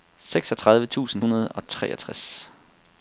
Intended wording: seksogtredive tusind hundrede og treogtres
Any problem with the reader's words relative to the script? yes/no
no